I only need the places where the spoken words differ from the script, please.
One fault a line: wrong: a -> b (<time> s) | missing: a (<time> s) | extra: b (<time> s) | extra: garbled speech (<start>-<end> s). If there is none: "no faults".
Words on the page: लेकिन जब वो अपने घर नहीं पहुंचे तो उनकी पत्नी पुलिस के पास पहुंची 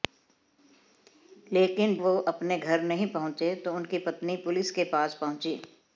missing: जब (1.9 s)